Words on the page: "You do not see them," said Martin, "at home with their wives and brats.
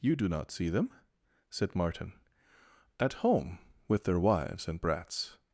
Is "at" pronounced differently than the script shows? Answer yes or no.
no